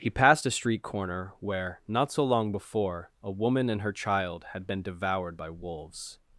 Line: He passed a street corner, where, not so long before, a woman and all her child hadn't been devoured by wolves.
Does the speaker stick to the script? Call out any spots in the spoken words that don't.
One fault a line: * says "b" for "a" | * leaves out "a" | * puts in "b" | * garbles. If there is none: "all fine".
* leaves out "all"
* says "had" for "hadn't"